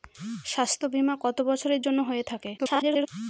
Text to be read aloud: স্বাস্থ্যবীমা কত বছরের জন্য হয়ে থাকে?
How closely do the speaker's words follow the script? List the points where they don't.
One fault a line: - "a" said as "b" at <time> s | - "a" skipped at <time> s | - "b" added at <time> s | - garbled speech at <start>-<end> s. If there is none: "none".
- garbled speech at 2.6-3.1 s